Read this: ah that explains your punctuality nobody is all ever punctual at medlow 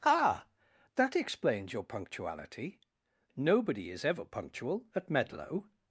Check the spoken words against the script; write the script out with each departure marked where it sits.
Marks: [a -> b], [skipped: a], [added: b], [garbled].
ah that explains your punctuality nobody is [skipped: all] ever punctual at medlow